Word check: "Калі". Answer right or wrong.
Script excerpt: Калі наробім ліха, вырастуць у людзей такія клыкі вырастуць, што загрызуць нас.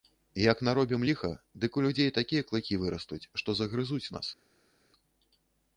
wrong